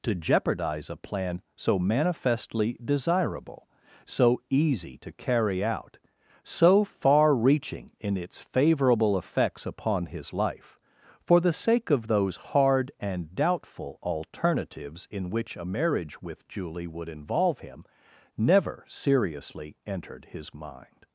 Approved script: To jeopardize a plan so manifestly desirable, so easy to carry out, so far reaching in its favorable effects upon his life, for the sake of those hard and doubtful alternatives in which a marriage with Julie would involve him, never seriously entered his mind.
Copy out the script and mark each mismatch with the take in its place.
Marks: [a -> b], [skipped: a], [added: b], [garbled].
To jeopardize a plan so manifestly desirable, so easy to carry out, so far reaching in its favorable effects upon his life, for the sake of those hard and doubtful alternatives in which a marriage with Julie would involve him, never seriously entered his mind.